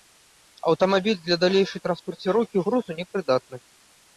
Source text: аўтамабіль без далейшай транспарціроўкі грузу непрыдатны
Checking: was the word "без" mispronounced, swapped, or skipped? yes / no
yes